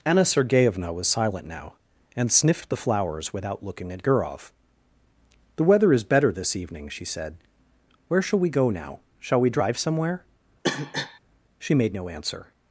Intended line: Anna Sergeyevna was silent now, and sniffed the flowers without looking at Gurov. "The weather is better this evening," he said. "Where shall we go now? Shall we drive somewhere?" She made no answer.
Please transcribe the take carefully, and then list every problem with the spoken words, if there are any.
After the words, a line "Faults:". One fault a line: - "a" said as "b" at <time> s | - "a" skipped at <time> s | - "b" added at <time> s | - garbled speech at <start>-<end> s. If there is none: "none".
Anna Sergeyevna was silent now, and sniffed the flowers without looking at Gurov. "The weather is better this evening," she said. "Where shall we go now? Shall we drive somewhere?" She made no answer.
Faults:
- "he" said as "she" at 6.9 s